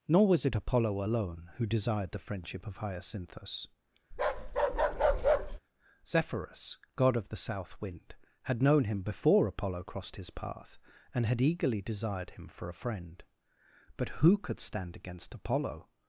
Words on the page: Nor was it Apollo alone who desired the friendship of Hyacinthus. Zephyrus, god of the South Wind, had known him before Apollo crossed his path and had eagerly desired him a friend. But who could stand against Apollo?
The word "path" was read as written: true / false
true